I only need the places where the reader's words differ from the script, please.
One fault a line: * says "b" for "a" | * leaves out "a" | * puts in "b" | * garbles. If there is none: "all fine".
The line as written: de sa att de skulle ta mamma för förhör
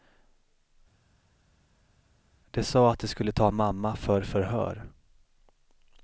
all fine